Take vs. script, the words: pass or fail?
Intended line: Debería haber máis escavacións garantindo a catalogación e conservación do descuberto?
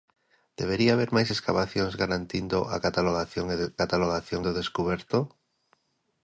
fail